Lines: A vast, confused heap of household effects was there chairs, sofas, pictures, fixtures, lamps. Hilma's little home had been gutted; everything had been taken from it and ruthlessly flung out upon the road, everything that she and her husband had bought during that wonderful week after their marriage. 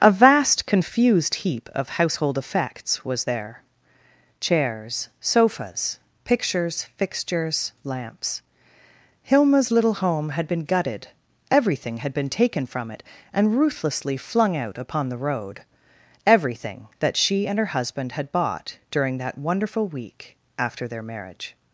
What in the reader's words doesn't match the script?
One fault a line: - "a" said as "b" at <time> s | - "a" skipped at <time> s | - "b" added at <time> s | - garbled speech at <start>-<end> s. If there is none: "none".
none